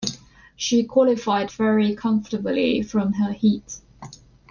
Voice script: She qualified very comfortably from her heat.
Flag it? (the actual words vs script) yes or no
no